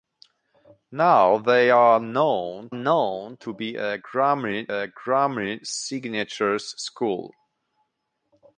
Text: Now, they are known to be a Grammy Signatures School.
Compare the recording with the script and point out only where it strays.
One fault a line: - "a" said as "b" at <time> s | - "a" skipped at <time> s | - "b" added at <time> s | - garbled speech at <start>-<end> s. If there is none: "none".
- "known" added at 2.7 s
- "a Grammy" added at 4.7 s